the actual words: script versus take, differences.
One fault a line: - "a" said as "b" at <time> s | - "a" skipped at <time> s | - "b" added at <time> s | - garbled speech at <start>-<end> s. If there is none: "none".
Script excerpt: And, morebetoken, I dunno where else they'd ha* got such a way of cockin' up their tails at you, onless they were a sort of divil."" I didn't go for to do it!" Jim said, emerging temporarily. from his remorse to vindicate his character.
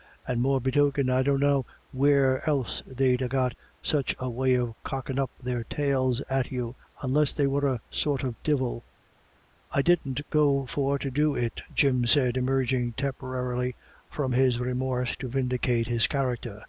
none